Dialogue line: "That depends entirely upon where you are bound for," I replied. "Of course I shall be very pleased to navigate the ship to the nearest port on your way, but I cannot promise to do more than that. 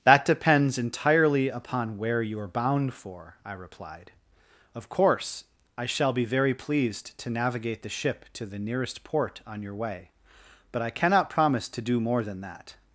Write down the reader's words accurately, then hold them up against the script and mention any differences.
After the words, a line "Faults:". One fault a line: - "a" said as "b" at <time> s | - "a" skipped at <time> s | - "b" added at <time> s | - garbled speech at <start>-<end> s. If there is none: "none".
"That depends entirely upon where you are bound for," I replied. "Of course I shall be very pleased to navigate the ship to the nearest port on your way, but I cannot promise to do more than that.
Faults:
none